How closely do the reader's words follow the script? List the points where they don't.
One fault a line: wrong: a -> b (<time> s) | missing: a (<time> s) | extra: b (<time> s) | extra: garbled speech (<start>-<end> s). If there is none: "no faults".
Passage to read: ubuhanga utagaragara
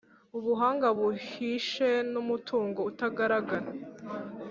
extra: buhishe n'umutungo (1.0 s)